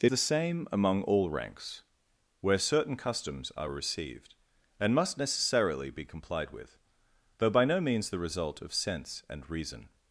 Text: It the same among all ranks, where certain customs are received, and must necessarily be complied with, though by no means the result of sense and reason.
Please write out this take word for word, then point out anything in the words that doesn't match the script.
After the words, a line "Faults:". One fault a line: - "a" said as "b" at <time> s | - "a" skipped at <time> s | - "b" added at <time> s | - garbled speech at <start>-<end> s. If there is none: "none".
It the same among all ranks, where certain customs are received, and must necessarily be complied with, though by no means the result of sense and reason.
Faults:
none